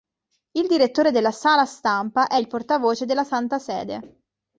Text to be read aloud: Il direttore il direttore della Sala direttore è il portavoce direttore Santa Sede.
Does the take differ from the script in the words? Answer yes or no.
yes